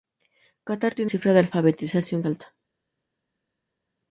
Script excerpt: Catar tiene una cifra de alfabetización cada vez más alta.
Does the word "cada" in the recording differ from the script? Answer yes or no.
yes